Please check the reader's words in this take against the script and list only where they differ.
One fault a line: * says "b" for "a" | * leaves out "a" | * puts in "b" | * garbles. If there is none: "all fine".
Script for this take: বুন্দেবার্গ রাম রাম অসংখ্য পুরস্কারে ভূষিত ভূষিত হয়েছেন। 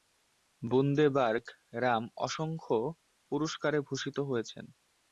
* leaves out "রাম"
* leaves out "ভূষিত"